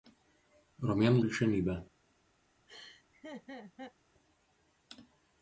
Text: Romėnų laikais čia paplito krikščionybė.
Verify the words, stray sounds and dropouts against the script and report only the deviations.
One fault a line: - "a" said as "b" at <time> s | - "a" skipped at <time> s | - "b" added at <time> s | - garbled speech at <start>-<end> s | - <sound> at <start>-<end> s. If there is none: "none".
- "laikais čia paplito" skipped at 1.2 s
- laugh at 2.7-3.9 s